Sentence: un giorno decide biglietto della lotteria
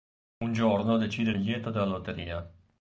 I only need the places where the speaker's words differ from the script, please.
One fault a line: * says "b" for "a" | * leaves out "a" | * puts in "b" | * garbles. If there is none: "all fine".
all fine